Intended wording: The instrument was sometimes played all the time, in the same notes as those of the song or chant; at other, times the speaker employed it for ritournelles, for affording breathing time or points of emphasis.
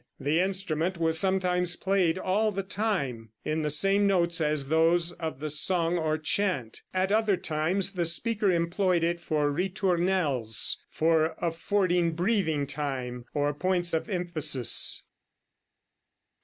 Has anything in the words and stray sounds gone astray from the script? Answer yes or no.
no